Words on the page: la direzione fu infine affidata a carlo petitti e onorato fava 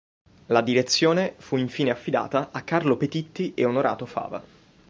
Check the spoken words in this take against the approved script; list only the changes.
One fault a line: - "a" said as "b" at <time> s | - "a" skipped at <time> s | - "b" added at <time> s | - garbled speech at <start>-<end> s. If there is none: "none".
none